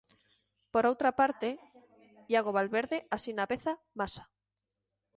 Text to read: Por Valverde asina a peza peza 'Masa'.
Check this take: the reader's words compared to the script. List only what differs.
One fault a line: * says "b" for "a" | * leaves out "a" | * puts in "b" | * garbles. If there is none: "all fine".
* puts in "outra parte Iago"
* leaves out "peza"